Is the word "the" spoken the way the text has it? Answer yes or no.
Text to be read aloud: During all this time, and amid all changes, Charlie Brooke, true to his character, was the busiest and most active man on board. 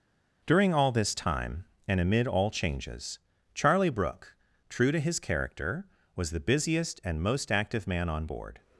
yes